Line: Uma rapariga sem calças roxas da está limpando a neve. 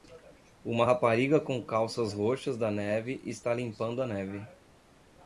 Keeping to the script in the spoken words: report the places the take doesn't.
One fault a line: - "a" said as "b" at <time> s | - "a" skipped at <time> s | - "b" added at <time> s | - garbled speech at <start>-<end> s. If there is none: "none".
- "sem" said as "com" at 1.4 s
- "neve" added at 2.7 s